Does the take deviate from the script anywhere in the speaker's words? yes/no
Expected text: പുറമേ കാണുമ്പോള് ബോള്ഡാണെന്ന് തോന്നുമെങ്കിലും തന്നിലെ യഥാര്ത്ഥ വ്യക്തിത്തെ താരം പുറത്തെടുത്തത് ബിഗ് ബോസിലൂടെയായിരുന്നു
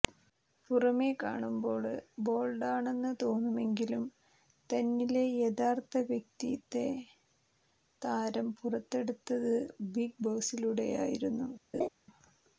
no